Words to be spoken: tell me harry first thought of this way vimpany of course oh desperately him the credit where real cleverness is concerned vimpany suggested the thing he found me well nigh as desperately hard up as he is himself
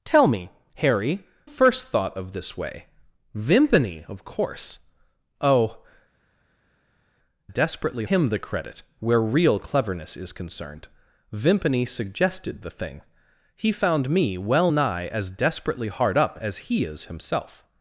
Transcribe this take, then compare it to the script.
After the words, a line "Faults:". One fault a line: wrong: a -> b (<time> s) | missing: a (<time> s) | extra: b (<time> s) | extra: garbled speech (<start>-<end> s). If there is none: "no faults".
tell me harry first thought of this way vimpany of course oh desperately him the credit where real cleverness is concerned vimpany suggested the thing he found me well nigh as desperately hard up as he is himself
Faults:
no faults